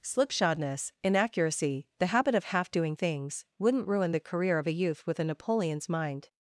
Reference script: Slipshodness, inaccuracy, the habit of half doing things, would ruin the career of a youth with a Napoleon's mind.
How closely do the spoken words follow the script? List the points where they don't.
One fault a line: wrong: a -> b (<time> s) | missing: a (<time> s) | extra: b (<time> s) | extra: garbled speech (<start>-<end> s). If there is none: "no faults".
wrong: would -> wouldn't (3.6 s)